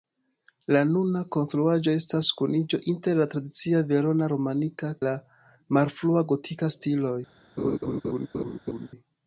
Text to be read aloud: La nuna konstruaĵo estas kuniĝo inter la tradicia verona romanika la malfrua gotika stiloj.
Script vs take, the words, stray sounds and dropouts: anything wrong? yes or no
yes